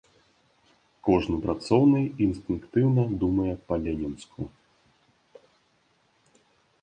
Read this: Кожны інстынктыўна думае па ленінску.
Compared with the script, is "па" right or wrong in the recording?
right